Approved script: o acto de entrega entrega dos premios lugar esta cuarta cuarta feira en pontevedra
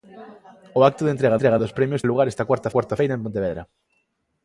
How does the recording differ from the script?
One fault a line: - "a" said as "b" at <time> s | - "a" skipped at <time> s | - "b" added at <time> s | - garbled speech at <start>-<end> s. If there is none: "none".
none